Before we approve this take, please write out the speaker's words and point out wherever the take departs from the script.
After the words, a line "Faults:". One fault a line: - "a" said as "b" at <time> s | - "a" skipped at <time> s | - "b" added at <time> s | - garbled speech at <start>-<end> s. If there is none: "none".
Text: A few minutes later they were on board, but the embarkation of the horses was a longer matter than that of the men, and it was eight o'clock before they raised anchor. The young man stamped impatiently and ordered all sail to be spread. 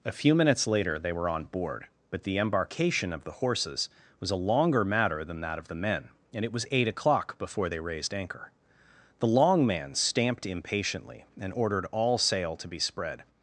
A few minutes later they were on board, but the embarkation of the horses was a longer matter than that of the men, and it was eight o'clock before they raised anchor. The long man stamped impatiently and ordered all sail to be spread.
Faults:
- "young" said as "long" at 9.3 s